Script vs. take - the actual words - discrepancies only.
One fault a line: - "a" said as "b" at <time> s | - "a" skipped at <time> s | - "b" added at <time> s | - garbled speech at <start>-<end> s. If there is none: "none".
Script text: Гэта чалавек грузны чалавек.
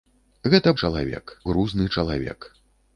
none